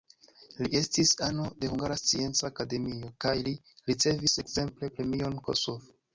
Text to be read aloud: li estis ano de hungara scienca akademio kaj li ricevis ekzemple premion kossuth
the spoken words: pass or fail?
pass